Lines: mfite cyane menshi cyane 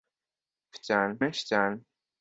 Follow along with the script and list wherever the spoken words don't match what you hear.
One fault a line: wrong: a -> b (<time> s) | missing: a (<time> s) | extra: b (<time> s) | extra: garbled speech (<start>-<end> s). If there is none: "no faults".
no faults